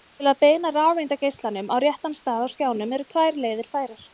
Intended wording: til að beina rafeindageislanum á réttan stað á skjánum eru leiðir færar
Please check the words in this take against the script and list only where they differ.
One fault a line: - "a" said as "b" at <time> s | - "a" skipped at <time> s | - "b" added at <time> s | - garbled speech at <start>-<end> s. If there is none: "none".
- "tvær" added at 3.1 s